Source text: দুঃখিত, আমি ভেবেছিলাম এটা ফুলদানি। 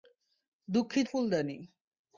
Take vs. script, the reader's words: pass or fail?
fail